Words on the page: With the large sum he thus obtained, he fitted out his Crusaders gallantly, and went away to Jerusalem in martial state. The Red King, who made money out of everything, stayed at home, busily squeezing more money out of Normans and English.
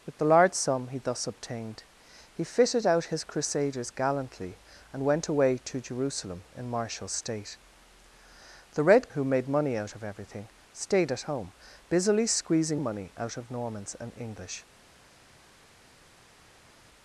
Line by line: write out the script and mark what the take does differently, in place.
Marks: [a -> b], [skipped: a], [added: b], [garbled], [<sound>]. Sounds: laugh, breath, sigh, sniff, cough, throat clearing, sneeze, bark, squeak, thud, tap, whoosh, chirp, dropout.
With the large sum he thus obtained, he fitted out his Crusaders gallantly, and went away to Jerusalem in martial state. The Red [skipped: King,] who made money out of everything, stayed at home, busily squeezing [skipped: more] money out of Normans and English.